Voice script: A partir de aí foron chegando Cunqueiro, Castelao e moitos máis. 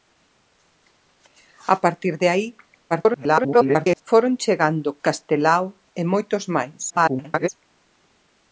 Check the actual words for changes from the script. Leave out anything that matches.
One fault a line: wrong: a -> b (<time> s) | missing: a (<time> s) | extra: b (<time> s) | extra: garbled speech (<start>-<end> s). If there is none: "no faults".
extra: garbled speech (2.9-4.0 s)
missing: Cunqueiro (5.0 s)
extra: garbled speech (6.9-7.5 s)